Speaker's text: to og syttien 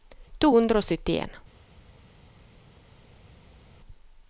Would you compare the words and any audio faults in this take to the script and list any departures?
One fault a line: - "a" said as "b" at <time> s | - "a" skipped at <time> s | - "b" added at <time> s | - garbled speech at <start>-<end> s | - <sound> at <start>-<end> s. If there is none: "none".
- "hundre" added at 0.5 s